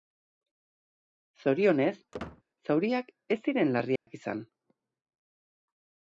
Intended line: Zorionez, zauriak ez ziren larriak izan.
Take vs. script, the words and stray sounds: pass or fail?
fail